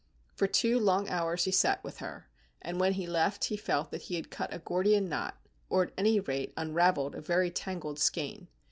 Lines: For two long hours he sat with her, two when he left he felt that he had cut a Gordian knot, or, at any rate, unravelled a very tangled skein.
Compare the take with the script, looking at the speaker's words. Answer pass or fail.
fail